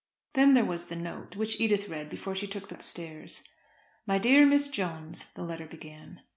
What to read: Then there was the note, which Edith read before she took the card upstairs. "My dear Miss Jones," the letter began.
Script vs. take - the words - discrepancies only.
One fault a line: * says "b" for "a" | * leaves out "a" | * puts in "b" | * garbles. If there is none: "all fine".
* leaves out "card"